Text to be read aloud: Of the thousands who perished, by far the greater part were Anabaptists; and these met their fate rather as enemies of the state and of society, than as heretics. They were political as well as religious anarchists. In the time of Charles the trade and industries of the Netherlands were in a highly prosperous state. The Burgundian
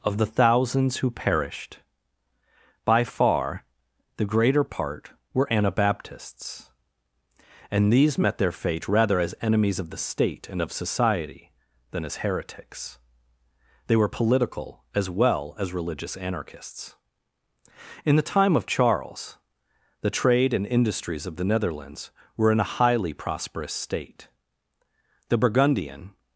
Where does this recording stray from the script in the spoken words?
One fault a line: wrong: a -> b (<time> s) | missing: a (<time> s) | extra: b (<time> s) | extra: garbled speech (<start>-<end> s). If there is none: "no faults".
no faults